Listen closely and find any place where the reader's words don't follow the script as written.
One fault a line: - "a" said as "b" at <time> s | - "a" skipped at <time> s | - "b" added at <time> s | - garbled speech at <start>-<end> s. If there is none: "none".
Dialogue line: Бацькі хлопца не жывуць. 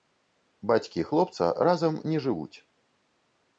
- "разам" added at 1.7 s